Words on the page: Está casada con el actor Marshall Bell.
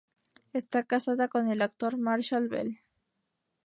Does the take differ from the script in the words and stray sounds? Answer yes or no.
no